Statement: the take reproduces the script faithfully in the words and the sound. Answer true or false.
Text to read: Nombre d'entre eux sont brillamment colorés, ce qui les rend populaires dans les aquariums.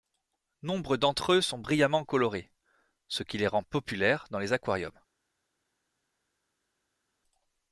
true